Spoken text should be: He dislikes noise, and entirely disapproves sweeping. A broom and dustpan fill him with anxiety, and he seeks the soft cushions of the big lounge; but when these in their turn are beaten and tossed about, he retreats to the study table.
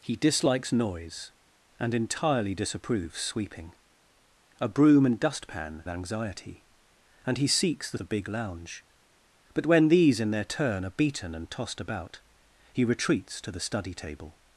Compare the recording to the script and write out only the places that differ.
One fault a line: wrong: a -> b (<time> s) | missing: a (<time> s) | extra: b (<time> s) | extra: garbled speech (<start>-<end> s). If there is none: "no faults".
missing: fill him with (5.8 s)
missing: soft cushions of (8.0 s)